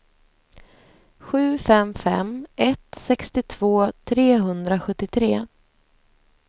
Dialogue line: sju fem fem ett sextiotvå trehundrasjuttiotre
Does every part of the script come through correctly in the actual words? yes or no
yes